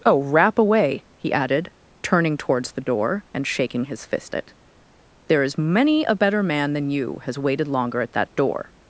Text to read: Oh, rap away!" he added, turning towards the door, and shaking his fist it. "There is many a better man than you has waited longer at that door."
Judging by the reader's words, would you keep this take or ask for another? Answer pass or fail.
pass